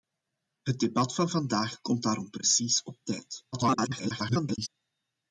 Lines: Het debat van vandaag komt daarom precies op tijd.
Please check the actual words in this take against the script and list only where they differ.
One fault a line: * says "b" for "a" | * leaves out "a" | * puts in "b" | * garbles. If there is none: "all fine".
* garbles